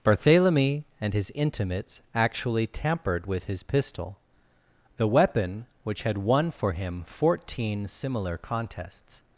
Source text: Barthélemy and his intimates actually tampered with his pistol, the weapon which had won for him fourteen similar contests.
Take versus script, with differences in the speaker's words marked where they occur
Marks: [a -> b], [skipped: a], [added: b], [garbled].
Barthélemy and his intimates actually tampered with his pistol, the weapon which had won for him fourteen similar contests.